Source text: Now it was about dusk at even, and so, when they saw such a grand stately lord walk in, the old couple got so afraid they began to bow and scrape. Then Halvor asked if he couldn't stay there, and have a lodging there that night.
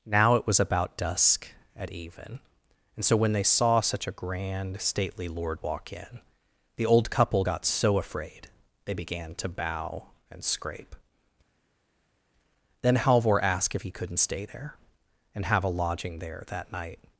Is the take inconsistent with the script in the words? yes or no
no